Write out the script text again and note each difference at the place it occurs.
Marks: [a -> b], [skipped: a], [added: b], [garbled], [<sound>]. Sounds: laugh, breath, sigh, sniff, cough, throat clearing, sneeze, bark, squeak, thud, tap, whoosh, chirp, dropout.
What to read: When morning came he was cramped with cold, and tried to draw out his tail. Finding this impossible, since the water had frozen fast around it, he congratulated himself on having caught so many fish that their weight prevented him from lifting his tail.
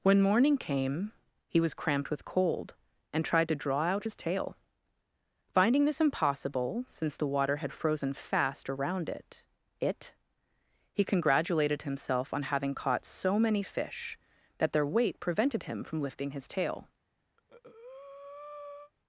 When morning came he was cramped with cold, and tried to draw out his tail. Finding this impossible, since the water had frozen fast around it, [added: it] he congratulated himself on having caught so many fish that their weight prevented him from lifting his tail. [breath]